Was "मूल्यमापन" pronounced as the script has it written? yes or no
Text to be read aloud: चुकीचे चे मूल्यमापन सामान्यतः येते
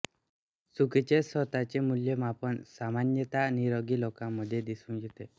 yes